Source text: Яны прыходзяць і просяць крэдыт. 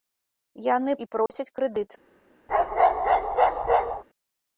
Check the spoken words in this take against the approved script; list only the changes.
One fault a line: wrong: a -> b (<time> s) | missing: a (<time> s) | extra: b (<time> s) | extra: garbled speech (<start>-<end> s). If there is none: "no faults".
missing: прыходзяць (0.9 s)